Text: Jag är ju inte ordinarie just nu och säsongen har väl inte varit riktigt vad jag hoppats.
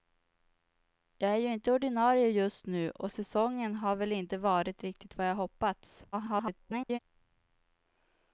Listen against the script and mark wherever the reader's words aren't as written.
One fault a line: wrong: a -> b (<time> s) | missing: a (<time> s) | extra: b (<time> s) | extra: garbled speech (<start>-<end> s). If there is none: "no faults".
extra: garbled speech (6.1-7.0 s)